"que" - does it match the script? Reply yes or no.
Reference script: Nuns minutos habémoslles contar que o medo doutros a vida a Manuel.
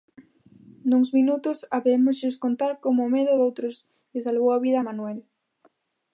no